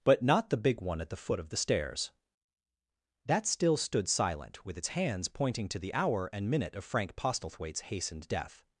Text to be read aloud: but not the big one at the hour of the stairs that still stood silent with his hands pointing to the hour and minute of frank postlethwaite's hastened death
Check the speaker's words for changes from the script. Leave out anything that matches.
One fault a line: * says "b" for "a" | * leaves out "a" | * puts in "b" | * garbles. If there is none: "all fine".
* says "foot" for "hour"
* says "its" for "his"